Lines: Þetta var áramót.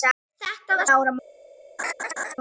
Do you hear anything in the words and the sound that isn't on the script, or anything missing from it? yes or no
yes